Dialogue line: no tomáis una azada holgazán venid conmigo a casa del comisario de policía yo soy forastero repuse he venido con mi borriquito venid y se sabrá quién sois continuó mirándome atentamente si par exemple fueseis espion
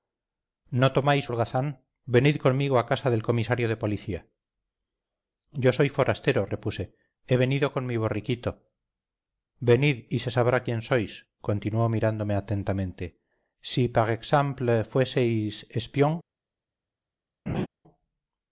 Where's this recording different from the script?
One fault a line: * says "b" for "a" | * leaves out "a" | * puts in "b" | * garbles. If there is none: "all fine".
* leaves out "una azada"